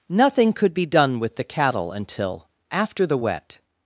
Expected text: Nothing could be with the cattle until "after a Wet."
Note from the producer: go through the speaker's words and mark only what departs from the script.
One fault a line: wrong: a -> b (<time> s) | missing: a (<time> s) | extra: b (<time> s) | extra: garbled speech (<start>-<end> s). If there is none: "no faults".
extra: done (0.8 s)
wrong: a -> the (3.0 s)